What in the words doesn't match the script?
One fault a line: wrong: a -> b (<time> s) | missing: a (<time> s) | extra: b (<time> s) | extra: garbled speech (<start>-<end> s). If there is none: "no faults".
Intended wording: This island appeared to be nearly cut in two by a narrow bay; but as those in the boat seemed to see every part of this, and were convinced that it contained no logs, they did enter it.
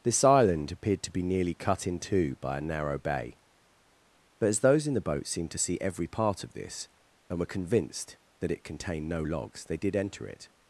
no faults